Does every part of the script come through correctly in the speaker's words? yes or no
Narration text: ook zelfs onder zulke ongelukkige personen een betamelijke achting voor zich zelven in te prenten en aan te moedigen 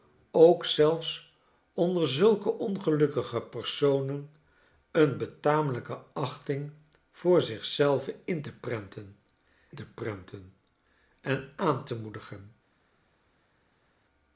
no